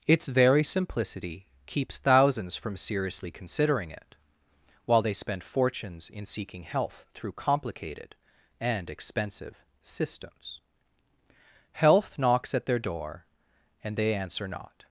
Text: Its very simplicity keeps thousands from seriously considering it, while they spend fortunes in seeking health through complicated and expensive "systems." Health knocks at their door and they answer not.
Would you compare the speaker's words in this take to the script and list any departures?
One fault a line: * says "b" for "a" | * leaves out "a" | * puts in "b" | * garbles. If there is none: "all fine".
all fine